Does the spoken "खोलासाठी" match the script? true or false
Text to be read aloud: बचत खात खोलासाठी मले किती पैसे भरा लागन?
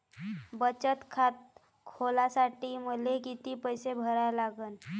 true